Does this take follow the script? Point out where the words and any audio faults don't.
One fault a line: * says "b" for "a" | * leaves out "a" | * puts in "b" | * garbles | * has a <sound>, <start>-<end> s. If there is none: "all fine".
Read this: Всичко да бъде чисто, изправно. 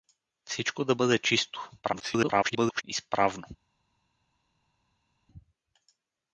* garbles